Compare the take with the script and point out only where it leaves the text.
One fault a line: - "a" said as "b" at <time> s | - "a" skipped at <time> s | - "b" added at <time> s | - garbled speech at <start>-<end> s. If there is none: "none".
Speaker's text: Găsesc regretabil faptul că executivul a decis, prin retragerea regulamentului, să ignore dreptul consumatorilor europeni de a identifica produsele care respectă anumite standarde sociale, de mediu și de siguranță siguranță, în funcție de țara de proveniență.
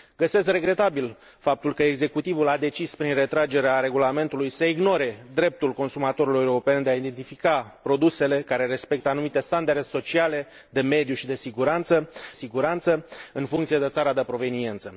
none